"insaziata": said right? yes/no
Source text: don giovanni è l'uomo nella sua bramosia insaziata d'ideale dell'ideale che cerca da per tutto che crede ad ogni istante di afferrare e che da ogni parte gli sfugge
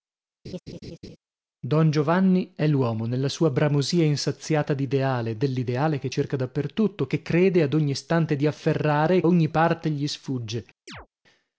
yes